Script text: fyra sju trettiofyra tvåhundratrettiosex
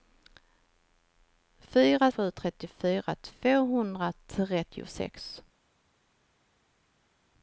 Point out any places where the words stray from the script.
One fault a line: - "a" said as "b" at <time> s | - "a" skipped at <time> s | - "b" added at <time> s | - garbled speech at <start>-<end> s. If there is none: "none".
none